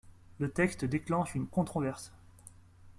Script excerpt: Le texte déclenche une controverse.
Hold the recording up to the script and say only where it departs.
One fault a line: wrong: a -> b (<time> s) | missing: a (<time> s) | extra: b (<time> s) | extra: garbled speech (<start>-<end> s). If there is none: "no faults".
no faults